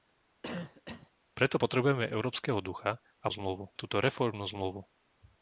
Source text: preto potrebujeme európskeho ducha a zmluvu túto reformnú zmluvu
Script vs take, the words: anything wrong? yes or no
no